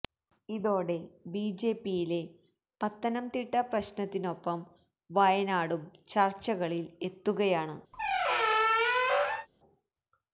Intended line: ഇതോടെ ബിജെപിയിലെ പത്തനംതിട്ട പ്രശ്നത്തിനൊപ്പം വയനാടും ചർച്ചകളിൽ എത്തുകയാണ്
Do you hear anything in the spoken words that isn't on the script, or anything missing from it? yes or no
no